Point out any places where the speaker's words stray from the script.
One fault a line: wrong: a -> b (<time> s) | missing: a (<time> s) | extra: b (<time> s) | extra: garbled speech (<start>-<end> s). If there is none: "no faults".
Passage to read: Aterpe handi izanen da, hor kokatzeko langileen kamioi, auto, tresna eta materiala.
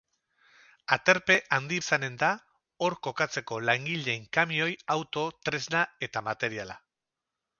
no faults